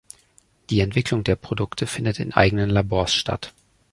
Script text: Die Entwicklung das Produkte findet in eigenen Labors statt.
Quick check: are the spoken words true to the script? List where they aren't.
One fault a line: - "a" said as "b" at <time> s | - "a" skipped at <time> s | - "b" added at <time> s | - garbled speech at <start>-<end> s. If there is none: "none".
- "das" said as "der" at 1.2 s